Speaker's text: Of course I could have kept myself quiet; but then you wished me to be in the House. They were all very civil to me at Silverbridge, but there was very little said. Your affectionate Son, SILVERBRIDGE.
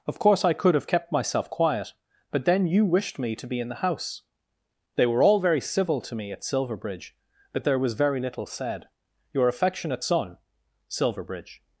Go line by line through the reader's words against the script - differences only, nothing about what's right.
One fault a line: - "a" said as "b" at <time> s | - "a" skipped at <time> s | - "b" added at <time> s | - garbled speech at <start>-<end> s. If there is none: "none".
none